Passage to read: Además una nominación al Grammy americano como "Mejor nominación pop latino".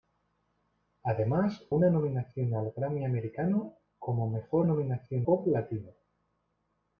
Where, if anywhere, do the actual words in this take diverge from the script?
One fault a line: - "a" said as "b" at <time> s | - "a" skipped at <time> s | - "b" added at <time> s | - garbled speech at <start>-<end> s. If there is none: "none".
none